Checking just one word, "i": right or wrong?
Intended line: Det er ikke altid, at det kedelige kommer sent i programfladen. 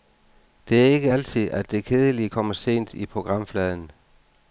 right